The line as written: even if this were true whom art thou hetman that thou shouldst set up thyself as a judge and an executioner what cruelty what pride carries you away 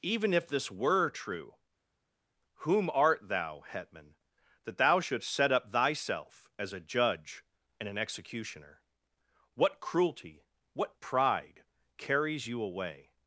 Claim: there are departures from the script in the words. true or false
false